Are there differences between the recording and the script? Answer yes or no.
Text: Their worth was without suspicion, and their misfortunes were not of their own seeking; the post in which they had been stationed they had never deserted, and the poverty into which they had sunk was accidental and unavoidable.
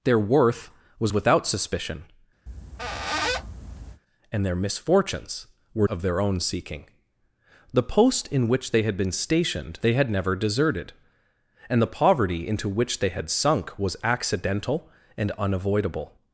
yes